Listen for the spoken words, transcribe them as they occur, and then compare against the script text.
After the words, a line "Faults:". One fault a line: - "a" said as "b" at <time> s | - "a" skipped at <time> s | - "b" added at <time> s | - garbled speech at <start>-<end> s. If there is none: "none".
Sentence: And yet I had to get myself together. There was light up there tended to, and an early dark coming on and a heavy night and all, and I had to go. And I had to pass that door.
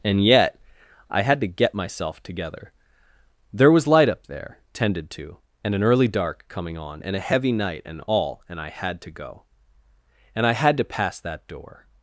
And yet I had to get myself together. There was light up there tended to, and an early dark coming on and a heavy night and all, and I had to go. And I had to pass that door.
Faults:
none